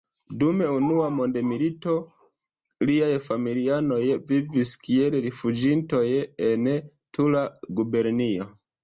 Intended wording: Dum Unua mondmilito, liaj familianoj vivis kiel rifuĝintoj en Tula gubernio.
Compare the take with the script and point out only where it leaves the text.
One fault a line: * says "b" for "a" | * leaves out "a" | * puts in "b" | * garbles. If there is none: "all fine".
all fine